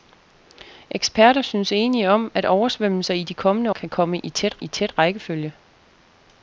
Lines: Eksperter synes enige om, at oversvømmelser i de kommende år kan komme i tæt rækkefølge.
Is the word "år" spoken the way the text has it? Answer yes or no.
no